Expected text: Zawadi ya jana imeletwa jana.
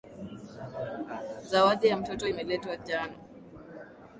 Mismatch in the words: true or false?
true